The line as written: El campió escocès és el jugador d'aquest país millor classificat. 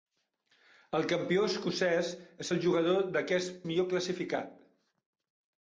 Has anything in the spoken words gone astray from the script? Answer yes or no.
yes